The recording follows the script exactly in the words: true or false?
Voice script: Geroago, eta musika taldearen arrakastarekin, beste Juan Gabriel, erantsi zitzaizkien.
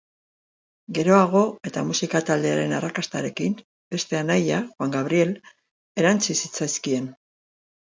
false